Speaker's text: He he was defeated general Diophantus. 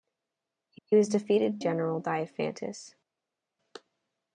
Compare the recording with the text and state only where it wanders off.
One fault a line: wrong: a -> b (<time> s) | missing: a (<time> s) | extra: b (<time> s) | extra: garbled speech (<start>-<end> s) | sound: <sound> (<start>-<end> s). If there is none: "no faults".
no faults